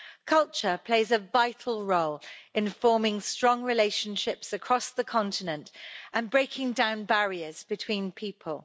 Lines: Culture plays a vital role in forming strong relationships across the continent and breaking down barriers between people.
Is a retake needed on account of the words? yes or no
no